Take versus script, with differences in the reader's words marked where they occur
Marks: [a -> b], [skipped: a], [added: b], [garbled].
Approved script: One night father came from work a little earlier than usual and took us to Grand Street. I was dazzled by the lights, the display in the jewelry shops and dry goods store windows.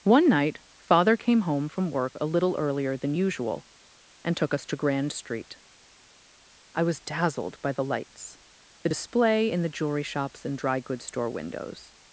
One night father came [added: home] from work a little earlier than usual and took us to Grand Street. I was dazzled by the lights, the display in the jewelry shops and dry goods store windows.